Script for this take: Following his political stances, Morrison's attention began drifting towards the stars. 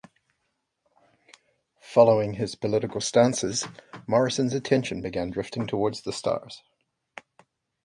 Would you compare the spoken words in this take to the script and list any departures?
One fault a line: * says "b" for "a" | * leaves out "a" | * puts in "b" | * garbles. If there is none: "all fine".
all fine